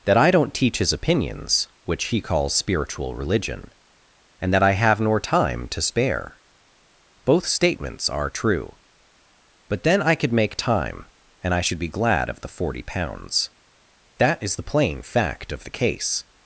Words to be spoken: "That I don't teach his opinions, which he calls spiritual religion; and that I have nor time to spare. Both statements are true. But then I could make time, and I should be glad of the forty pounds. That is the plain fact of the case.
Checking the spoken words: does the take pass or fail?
pass